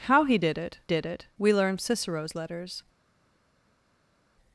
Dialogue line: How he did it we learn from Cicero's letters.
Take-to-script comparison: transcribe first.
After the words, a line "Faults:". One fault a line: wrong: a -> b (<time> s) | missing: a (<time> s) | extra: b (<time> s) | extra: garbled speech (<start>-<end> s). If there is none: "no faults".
How he did it did it we learn Cicero's letters.
Faults:
extra: did it (0.9 s)
missing: from (1.8 s)